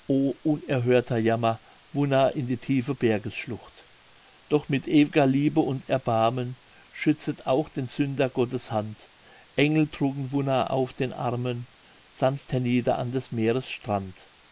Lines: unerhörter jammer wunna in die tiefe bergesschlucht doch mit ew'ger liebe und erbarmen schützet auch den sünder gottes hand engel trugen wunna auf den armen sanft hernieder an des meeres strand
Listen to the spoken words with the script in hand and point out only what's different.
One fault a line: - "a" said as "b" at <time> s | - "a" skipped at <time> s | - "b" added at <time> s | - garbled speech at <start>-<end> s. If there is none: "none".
none